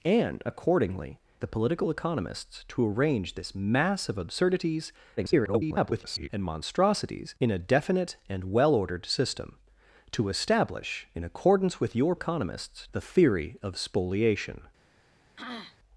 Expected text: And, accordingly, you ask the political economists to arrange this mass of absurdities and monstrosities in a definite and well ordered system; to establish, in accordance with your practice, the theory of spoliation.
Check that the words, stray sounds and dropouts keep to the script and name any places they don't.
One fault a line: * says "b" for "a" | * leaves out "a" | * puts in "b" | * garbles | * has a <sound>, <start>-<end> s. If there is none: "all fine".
* leaves out "you ask"
* garbles
* says "economists" for "practice"
* has a throat clearing, 15.4-15.8 s